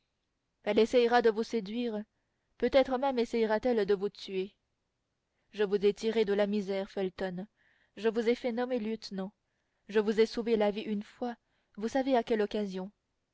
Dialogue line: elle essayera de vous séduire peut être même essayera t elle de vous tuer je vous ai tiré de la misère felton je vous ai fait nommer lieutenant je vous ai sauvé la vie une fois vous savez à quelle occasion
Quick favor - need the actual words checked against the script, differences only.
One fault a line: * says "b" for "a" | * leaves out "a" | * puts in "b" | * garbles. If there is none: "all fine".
all fine